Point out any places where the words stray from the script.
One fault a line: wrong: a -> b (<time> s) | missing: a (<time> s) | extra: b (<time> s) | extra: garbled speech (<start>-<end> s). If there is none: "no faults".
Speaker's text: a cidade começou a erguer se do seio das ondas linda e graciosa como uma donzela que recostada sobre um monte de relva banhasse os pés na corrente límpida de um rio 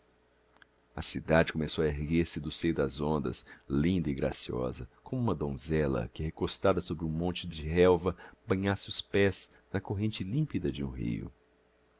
no faults